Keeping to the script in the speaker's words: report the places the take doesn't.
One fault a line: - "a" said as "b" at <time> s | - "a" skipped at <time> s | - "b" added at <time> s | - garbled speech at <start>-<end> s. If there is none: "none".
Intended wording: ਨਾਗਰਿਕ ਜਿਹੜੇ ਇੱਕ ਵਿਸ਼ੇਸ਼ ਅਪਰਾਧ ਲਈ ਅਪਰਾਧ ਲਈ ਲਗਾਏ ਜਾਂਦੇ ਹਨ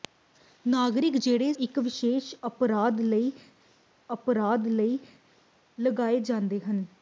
none